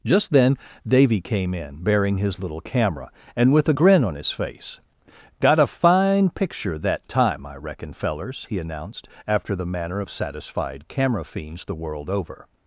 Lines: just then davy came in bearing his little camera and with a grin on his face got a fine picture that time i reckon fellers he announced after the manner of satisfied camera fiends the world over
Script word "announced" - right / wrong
right